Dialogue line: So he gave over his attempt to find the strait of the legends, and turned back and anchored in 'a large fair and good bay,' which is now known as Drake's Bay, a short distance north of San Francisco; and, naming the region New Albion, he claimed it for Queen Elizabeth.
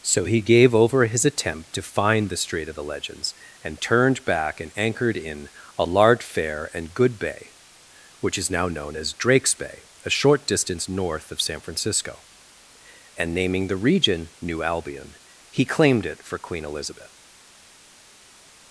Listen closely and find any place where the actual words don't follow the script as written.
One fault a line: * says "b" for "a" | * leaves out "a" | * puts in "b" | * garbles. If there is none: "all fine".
all fine